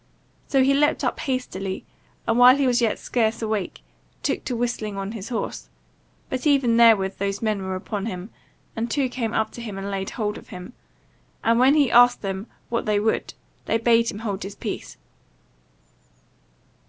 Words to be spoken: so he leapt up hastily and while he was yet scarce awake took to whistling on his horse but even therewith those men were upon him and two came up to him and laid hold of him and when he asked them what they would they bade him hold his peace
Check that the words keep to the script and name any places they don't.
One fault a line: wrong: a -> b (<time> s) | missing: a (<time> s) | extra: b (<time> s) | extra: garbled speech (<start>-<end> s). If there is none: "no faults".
no faults